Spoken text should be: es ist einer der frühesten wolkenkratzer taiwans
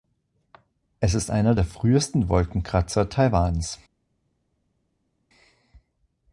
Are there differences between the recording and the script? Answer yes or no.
no